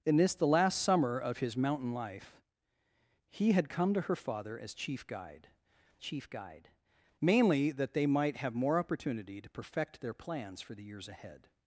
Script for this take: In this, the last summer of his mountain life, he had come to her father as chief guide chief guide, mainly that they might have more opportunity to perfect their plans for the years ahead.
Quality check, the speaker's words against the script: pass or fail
pass